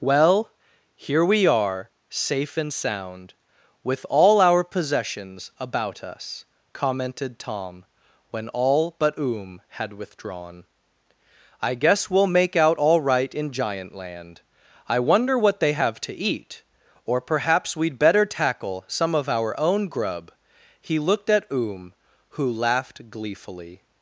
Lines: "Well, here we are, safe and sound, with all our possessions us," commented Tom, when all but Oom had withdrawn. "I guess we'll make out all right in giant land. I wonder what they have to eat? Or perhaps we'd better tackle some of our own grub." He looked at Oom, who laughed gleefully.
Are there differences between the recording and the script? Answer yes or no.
yes